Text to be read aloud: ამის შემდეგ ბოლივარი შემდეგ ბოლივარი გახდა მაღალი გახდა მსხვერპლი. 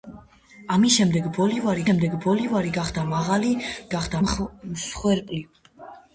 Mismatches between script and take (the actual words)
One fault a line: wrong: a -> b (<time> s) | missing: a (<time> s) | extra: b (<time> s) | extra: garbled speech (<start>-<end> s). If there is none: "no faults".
no faults